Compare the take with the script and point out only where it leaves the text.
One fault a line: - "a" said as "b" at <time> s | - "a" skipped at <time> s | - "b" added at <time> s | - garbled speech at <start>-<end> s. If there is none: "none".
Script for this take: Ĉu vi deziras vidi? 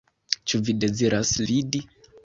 none